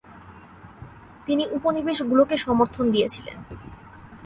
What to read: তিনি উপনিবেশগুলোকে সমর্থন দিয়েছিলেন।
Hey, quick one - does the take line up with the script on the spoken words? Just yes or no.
yes